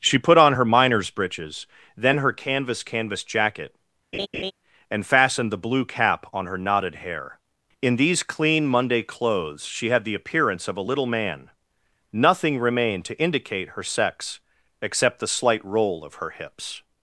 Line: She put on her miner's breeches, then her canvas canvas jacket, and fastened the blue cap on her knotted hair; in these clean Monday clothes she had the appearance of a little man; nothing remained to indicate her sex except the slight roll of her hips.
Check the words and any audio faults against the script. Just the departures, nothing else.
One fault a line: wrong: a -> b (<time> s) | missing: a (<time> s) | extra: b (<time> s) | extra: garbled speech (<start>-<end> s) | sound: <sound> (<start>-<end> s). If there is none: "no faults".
sound: laugh (4.1-4.5 s)